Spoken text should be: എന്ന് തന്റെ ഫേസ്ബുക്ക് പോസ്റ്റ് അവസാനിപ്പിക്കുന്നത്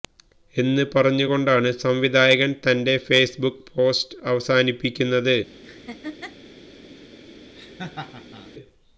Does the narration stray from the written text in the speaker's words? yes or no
yes